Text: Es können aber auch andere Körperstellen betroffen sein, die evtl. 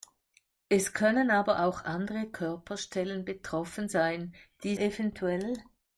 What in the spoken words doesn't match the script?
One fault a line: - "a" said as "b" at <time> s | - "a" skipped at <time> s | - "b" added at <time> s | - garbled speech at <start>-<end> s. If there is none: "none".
none